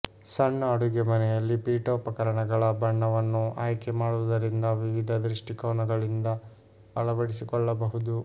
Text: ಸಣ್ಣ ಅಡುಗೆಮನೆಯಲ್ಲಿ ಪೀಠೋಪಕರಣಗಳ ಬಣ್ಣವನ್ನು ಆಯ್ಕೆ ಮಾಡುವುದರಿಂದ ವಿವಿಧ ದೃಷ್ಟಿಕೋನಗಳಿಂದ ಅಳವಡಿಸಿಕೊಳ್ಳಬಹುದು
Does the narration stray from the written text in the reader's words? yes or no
no